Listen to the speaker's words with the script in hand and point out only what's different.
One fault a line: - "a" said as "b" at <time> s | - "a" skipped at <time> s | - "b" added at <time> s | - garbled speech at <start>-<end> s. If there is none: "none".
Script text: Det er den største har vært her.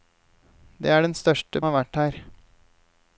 none